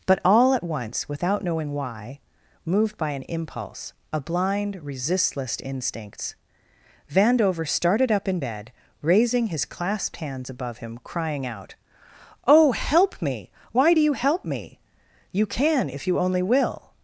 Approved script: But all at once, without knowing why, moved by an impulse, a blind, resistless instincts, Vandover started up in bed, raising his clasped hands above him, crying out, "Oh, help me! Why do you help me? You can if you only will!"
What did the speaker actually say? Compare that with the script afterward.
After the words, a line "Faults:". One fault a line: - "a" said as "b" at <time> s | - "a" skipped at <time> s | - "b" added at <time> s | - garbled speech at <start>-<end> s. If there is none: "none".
But all at once, without knowing why, moved by an impulse, a blind, resistless instincts, Vandover started up in bed, raising his clasped hands above him, crying out, "Oh, help me! Why do you help me? You can if you only will!"
Faults:
none